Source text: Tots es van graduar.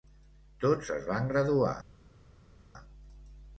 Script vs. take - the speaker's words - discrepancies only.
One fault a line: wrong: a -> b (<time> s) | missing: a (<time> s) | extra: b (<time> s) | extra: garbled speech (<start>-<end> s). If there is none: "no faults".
no faults